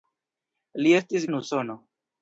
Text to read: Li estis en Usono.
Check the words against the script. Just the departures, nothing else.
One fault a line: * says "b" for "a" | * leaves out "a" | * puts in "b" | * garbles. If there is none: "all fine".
all fine